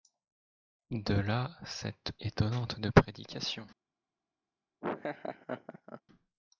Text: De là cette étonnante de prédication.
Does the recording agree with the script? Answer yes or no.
yes